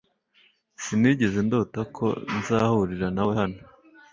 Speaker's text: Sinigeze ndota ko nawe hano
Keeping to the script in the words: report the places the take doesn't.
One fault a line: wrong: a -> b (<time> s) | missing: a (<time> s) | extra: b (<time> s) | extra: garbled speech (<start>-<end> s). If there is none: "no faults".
extra: nzahurira (2.4 s)